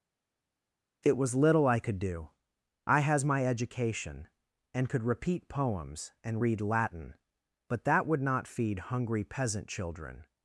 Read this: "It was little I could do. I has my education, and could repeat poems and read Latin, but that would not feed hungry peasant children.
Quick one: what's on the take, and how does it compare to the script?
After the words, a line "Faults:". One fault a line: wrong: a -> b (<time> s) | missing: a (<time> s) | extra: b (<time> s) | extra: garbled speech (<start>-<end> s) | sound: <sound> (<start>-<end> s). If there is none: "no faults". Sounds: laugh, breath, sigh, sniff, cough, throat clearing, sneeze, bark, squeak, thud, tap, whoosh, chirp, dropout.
"It was little I could do. I has my education, and could repeat poems and read Latin, but that would not feed hungry peasant children.
Faults:
no faults